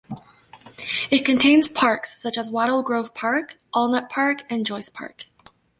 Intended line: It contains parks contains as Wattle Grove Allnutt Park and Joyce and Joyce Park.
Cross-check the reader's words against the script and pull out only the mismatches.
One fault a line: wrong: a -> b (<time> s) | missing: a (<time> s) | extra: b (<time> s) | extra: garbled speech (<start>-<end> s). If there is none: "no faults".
wrong: contains -> such (2.2 s)
extra: Park (3.1 s)
missing: and Joyce (4.9 s)